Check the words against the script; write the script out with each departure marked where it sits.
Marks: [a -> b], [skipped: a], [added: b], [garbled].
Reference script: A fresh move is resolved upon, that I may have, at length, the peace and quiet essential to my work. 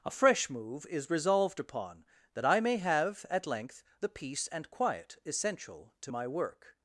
A fresh move is resolved upon, that I may have, at length, the peace and quiet essential to my work.